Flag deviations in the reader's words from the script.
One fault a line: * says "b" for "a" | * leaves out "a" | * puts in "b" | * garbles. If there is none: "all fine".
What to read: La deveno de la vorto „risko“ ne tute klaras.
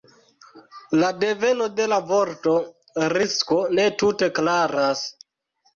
all fine